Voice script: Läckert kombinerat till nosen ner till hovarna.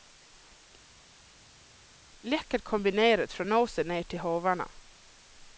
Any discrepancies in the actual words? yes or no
yes